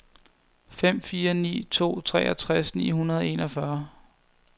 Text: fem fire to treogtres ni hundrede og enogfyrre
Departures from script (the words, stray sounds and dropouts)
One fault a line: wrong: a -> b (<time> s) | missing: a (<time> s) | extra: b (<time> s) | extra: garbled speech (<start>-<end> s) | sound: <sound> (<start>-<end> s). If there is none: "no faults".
extra: ni (1.3 s)